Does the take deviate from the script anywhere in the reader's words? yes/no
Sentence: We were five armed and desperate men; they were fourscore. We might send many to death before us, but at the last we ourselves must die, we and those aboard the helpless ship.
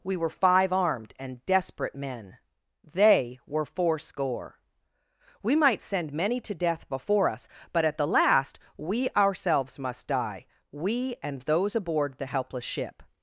no